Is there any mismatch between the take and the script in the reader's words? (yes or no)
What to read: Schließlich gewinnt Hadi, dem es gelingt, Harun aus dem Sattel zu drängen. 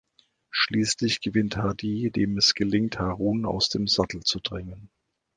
no